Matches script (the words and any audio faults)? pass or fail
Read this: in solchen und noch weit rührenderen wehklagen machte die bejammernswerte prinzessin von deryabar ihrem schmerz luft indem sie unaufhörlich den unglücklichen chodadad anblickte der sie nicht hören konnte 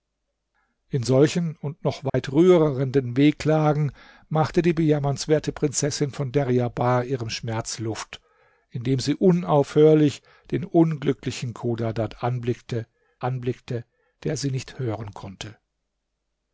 fail